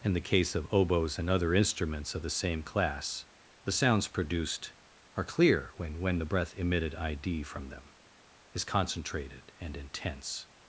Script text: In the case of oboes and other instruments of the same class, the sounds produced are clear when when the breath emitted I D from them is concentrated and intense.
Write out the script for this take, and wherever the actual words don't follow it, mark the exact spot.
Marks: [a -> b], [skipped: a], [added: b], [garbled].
In the case of oboes and other instruments of the same class, the sounds produced are clear when when the breath emitted I D from them is concentrated and intense.